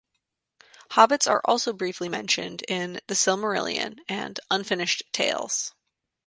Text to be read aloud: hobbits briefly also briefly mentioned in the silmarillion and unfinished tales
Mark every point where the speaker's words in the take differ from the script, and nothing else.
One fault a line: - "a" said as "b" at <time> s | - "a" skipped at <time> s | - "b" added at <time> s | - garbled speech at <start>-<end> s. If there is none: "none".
- "briefly" said as "are" at 1.3 s